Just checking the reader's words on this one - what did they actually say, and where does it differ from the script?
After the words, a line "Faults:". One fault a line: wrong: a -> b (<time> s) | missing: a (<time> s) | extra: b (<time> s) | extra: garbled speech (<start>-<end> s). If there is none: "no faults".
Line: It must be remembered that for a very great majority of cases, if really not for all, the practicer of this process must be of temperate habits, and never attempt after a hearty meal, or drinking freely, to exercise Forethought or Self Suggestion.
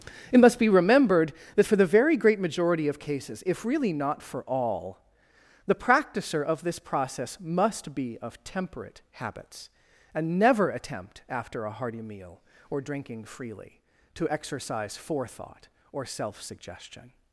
It must be remembered that for the very great majority of cases, if really not for all, the practicer of this process must be of temperate habits, and never attempt after a hearty meal, or drinking freely, to exercise Forethought or Self Suggestion.
Faults:
wrong: a -> the (1.8 s)